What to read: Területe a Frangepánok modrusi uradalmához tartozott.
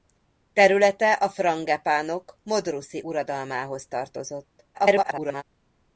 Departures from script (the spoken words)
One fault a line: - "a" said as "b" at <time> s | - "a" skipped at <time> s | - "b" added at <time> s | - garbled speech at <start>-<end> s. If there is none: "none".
- garbled speech at 4.7-5.4 s